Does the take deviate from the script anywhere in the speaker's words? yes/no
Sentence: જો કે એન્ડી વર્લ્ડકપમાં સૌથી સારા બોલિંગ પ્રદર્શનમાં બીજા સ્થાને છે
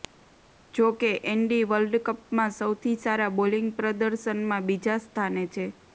no